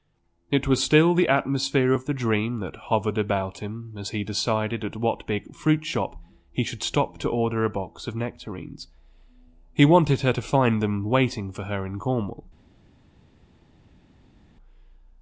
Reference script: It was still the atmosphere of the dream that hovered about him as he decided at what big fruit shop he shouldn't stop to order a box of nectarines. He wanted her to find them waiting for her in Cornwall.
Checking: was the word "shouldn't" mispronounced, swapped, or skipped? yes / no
yes